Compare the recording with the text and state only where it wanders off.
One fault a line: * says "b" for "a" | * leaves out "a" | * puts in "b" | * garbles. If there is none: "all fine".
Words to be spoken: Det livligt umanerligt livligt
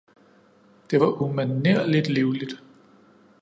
* says "var" for "livligt"